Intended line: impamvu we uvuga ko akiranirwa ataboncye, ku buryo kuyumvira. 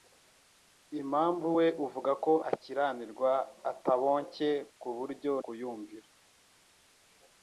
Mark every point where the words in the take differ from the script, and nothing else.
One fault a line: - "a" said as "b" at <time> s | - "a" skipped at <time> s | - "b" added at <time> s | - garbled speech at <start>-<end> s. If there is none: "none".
none